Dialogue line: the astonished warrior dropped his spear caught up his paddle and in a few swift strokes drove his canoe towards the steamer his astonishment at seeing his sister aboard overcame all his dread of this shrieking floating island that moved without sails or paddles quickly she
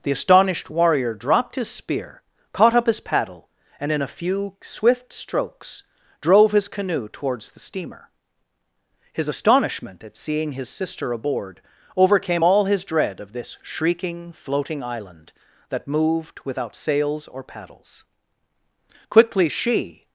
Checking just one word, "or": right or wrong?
right